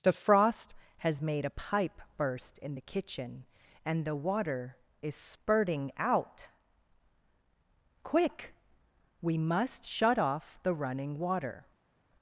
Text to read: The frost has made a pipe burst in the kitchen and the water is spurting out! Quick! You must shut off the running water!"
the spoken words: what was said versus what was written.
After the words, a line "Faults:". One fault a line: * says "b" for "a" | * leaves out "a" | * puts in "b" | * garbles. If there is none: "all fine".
The frost has made a pipe burst in the kitchen and the water is spurting out! Quick! We must shut off the running water!"
Faults:
* says "We" for "You"